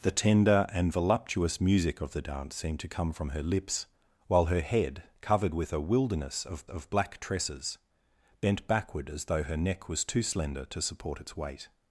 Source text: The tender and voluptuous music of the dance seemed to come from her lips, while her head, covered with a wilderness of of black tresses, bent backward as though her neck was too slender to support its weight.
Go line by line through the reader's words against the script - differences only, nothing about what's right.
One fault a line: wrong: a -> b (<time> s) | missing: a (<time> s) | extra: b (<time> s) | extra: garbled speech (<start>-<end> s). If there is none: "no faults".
no faults